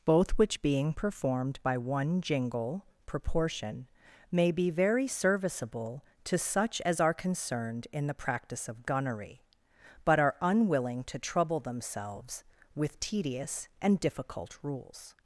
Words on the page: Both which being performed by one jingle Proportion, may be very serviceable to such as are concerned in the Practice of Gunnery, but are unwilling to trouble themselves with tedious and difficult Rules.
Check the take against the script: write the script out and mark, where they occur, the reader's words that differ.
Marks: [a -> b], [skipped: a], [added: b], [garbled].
Both which being performed by one jingle Proportion, may be very serviceable to such as are concerned in the Practice of Gunnery, but are unwilling to trouble themselves with tedious and difficult Rules.